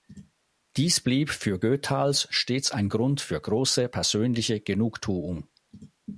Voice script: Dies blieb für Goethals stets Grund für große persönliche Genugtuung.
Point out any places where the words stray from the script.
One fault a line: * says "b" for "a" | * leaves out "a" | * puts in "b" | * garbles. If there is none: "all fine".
* puts in "ein"